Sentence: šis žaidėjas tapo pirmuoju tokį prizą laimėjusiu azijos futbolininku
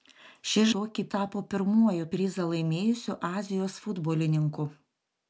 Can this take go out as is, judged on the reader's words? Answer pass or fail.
fail